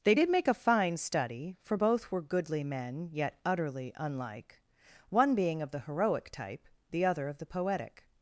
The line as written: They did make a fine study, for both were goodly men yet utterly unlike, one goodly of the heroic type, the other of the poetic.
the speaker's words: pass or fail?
fail